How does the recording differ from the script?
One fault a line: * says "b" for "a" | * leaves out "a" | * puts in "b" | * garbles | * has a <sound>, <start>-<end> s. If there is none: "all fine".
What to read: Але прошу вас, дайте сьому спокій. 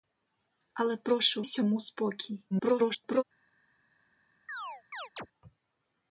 * leaves out "вас дайте"
* garbles
* has a chirp, 4.5-5.3 s